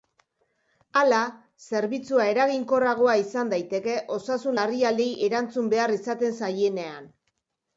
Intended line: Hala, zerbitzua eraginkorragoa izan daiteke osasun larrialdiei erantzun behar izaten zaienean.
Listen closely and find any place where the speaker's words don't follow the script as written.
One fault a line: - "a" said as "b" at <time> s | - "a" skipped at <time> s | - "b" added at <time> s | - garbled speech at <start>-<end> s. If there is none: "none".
none